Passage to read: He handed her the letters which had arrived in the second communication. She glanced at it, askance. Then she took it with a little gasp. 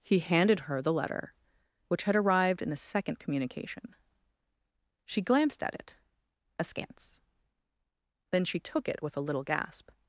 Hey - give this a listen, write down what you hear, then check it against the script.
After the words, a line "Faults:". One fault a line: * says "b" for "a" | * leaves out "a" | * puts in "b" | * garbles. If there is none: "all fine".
He handed her the letter which had arrived in the second communication. She glanced at it, askance. Then she took it with a little gasp.
Faults:
* says "letter" for "letters"